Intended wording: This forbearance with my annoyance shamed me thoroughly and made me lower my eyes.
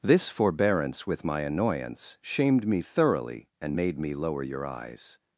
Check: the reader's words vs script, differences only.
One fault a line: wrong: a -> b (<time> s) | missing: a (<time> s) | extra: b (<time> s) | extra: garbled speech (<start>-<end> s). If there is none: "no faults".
wrong: my -> your (4.4 s)